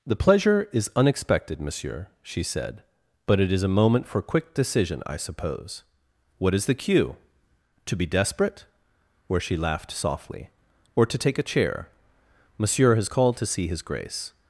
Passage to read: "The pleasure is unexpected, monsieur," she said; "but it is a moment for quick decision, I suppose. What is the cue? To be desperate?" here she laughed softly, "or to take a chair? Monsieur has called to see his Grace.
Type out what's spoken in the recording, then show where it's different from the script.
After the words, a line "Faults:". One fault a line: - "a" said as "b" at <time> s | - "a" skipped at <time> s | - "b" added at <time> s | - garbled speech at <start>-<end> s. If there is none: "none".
"The pleasure is unexpected, monsieur," she said; "but it is a moment for quick decision, I suppose. What is the cue? To be desperate?" where she laughed softly, "or to take a chair? Monsieur has called to see his Grace.
Faults:
- "here" said as "where" at 9.3 s